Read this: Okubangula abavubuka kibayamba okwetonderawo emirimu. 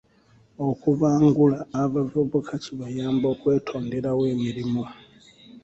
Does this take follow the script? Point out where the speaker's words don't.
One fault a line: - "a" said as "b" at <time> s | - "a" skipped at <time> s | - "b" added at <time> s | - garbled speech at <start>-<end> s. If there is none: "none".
none